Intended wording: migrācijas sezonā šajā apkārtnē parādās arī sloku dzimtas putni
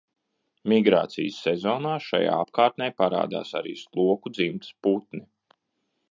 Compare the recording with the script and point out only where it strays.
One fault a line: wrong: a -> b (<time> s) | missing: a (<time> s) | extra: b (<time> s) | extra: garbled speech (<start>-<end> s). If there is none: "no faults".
no faults